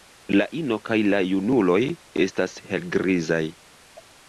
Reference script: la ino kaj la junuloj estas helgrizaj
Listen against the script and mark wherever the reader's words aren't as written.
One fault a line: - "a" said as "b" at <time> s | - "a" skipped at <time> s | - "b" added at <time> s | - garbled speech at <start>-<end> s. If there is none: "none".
none